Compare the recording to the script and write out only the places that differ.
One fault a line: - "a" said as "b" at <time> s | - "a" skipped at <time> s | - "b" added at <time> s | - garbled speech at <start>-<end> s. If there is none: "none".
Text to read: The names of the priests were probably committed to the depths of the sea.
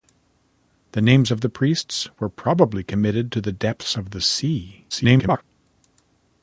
- garbled speech at 4.9-5.4 s